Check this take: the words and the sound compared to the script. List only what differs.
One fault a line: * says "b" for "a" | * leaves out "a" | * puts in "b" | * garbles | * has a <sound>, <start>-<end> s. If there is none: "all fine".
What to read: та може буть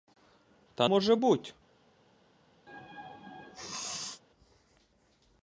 * has a sneeze, 2.7-4.2 s